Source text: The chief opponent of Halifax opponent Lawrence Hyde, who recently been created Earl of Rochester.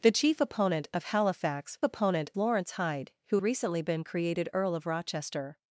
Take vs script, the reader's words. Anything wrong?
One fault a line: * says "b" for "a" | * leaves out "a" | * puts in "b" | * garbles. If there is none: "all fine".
all fine